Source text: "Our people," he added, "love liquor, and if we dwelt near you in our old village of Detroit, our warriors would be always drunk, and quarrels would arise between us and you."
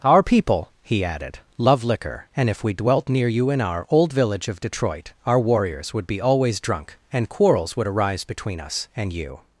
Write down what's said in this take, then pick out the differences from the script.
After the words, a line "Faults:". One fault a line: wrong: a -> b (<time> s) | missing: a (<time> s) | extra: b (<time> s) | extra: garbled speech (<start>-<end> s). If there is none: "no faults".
"Our people," he added, "love liquor, and if we dwelt near you in our old village of Detroit, our warriors would be always drunk, and quarrels would arise between us and you."
Faults:
no faults